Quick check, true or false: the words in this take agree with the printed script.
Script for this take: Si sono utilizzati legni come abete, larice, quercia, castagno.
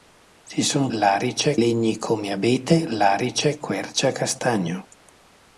false